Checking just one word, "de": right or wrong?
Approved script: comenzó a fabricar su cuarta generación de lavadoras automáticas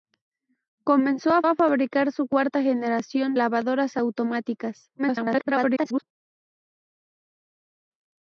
wrong